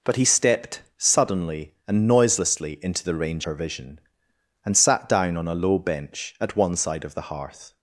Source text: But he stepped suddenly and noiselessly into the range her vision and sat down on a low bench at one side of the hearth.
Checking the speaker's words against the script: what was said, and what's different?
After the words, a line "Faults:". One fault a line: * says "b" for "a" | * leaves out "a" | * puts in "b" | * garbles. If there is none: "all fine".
But he stepped suddenly and noiselessly into the range her vision and sat down on a low bench at one side of the hearth.
Faults:
all fine